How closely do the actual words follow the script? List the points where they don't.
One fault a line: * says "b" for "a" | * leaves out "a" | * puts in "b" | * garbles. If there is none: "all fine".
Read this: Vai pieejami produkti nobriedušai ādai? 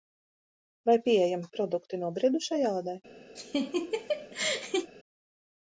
all fine